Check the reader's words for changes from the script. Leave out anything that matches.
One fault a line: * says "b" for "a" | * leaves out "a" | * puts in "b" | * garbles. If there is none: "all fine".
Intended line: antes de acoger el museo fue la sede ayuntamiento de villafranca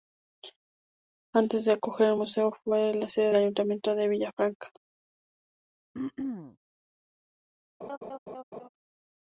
all fine